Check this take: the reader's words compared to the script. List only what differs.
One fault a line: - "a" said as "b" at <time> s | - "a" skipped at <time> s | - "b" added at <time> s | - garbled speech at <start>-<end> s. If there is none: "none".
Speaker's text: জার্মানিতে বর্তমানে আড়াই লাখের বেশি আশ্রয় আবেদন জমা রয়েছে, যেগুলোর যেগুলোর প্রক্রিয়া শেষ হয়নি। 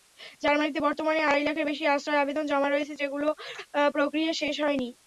- "যেগুলোর" skipped at 3.3 s